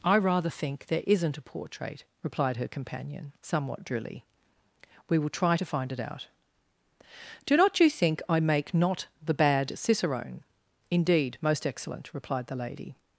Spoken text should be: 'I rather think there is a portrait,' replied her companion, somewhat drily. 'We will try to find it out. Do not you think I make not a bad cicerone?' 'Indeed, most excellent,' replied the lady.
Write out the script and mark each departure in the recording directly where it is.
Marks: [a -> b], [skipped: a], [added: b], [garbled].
'I rather think there [is -> isn't] a portrait,' replied her companion, somewhat drily. 'We will try to find it out. Do not you think I make not [a -> the] bad cicerone?' 'Indeed, most excellent,' replied the lady.